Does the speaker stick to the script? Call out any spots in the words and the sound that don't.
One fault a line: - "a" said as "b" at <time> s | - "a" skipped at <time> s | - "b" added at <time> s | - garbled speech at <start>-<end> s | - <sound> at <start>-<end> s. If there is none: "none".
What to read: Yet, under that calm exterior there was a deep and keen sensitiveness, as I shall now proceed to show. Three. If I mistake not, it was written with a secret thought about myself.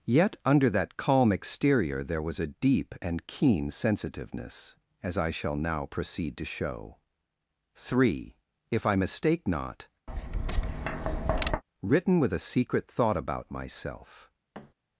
- "it was" skipped at 9.9 s
- tap at 10.1-11.6 s
- thud at 14.5-14.7 s